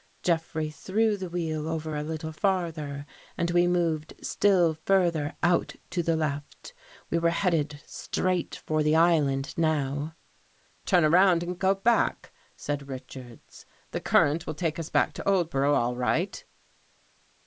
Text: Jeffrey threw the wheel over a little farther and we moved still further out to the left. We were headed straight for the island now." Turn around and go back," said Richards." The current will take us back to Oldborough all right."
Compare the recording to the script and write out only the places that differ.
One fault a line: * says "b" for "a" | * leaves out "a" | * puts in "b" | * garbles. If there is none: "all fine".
all fine